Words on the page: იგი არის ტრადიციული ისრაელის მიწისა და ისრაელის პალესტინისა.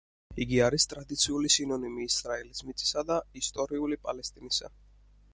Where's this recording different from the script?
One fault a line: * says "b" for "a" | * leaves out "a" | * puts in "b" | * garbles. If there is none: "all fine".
* puts in "სინონიმი"
* says "ისტორიული" for "ისრაელის"